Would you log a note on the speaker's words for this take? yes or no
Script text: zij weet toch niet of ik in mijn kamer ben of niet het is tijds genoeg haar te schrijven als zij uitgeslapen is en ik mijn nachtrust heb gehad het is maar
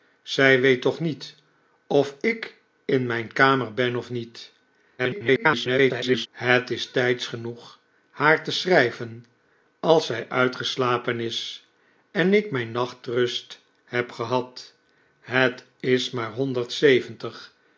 yes